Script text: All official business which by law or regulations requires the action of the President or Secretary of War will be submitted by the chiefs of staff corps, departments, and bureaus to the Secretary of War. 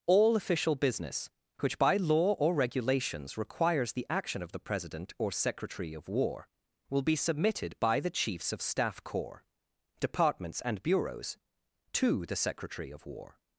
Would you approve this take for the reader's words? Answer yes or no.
yes